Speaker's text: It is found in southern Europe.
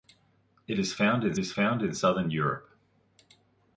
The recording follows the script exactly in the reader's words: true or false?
false